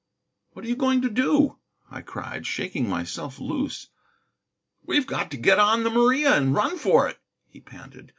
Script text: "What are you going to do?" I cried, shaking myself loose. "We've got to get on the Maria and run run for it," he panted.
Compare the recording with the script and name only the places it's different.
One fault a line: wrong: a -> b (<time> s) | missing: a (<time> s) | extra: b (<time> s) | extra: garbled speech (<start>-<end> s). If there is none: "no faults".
missing: run (6.8 s)